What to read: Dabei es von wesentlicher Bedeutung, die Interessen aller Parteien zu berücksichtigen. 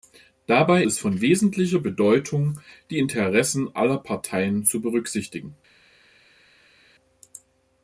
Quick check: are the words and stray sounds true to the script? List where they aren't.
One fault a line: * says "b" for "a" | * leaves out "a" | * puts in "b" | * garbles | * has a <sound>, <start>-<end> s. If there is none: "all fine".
all fine